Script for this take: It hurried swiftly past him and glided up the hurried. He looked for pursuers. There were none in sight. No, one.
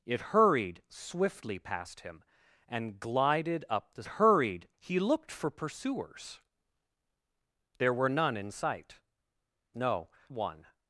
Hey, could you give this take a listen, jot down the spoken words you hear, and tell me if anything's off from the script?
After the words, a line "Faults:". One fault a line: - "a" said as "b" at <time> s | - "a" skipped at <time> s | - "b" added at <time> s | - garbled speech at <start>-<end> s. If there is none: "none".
It hurried swiftly past him and glided up the hurried. He looked for pursuers. There were none in sight. No, one.
Faults:
none